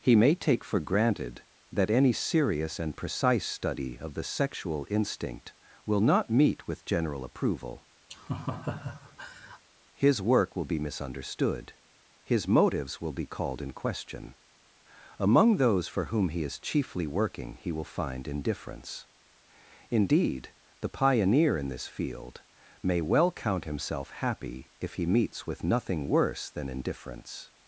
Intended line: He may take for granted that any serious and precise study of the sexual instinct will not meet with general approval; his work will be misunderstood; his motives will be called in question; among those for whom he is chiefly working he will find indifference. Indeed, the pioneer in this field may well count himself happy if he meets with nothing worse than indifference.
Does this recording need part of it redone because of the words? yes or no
no